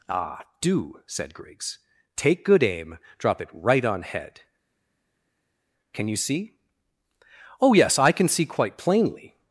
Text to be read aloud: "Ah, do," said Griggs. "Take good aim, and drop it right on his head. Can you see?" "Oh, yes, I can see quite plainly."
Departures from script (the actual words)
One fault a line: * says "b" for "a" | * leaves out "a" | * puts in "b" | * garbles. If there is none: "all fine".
* leaves out "and"
* leaves out "his"